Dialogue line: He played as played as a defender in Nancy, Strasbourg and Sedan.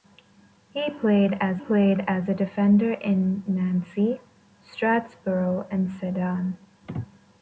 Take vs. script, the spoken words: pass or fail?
pass